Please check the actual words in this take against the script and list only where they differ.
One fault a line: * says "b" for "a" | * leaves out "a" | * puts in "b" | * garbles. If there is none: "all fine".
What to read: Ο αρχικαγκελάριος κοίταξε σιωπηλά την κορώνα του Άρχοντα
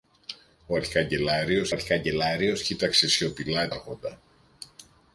* puts in "αρχικαγκελάριος"
* leaves out "την κορώνα του"